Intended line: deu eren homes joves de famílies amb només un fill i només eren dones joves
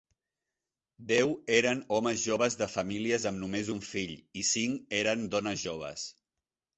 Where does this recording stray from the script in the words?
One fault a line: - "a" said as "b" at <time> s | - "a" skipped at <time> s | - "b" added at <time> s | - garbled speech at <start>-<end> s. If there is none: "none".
- "només" said as "cinc" at 4.5 s